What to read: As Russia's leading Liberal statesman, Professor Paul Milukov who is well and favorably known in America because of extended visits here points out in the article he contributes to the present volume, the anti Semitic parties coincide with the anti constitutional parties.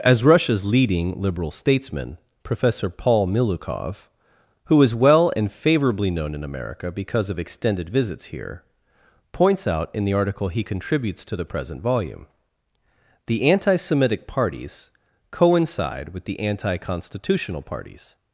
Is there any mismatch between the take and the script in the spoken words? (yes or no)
no